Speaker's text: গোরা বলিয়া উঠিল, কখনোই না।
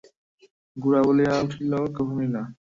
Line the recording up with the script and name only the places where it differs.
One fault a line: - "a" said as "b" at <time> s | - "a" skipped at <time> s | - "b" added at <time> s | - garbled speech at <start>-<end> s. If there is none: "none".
none